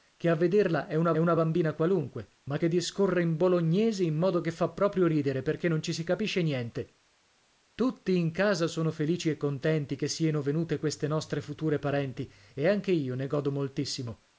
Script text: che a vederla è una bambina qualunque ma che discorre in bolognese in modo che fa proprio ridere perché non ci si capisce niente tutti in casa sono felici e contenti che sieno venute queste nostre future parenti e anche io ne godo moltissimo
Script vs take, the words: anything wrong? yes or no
yes